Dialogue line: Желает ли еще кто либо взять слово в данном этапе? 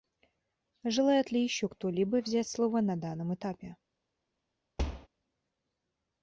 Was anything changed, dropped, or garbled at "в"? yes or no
yes